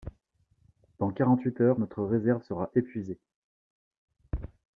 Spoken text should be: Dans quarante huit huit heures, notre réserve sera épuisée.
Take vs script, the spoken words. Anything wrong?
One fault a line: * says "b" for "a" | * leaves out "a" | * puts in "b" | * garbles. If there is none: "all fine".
* leaves out "huit"